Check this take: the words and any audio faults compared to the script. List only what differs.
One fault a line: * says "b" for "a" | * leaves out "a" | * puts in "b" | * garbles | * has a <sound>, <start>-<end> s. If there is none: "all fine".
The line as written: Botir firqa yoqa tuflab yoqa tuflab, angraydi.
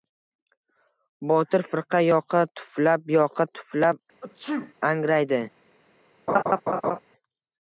* has a sneeze, 4.2-4.7 s
* has a laugh, 6.3-7.0 s